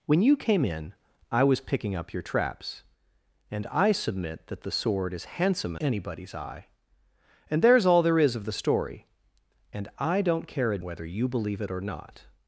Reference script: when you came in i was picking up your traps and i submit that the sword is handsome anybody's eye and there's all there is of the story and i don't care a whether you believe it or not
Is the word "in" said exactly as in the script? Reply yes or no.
yes